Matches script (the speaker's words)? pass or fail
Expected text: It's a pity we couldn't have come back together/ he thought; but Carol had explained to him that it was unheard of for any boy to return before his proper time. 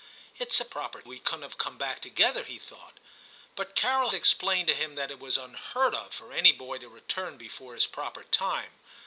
fail